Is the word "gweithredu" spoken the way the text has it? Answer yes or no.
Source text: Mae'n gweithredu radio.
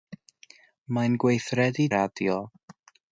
yes